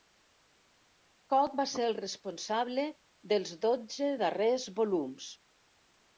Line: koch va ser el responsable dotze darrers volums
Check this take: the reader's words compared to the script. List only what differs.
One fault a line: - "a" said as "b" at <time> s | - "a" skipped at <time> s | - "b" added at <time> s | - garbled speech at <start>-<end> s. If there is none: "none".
- "dels" added at 3.3 s